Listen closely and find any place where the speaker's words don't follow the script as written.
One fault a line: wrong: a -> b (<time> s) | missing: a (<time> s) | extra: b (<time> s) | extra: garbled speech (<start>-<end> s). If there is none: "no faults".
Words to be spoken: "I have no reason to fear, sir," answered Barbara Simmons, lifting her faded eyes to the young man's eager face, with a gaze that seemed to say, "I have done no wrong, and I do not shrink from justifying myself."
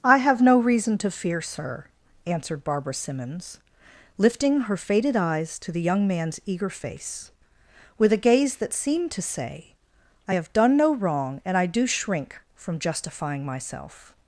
missing: not (11.8 s)